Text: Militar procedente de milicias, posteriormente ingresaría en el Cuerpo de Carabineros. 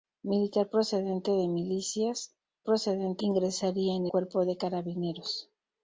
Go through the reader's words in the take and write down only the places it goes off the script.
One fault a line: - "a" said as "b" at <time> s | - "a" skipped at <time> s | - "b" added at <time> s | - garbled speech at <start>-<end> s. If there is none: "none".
- "posteriormente" said as "procedente" at 2.6 s
- "el" skipped at 4.1 s